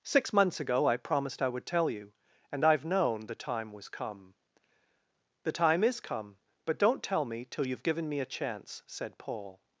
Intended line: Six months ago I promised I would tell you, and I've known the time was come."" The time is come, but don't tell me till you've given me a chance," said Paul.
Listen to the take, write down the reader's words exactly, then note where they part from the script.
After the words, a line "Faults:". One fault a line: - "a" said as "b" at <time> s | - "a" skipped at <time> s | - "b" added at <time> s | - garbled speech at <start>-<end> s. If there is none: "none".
Six months ago I promised I would tell you, and I've known the time was come."" The time is come, but don't tell me till you've given me a chance," said Paul.
Faults:
none